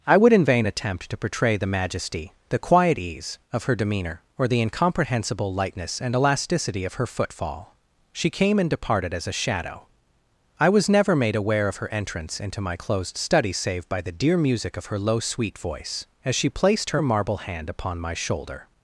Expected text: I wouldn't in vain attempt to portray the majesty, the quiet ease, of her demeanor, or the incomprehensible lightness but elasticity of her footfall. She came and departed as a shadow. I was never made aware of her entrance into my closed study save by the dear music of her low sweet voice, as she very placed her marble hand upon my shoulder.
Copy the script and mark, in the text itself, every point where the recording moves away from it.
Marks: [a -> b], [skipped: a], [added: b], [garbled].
I [wouldn't -> would] in vain attempt to portray the majesty, the quiet ease, of her demeanor, or the incomprehensible lightness [but -> and] elasticity of her footfall. She came and departed as a shadow. I was never made aware of her entrance into my closed study save by the dear music of her low sweet voice, as she [skipped: very] placed her marble hand upon my shoulder.